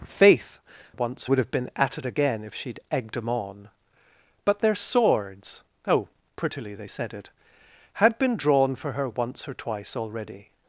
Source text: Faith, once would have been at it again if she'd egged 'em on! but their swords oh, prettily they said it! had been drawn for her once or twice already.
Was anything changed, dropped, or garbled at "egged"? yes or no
no